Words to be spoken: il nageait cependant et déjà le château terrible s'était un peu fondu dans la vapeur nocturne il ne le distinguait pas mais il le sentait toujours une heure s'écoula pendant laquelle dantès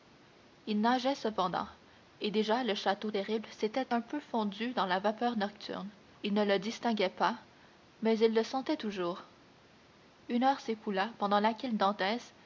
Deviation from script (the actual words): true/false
false